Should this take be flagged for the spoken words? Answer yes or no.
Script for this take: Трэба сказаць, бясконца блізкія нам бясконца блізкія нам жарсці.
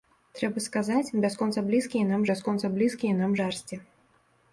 no